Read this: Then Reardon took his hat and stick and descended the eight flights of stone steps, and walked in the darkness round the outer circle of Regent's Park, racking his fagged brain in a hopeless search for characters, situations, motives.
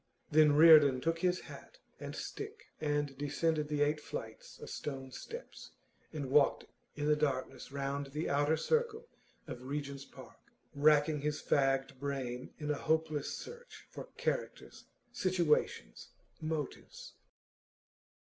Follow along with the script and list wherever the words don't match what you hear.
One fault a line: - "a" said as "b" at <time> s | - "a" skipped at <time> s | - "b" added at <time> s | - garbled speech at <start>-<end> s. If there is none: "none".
none